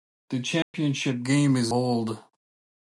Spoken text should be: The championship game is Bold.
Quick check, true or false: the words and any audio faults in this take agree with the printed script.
false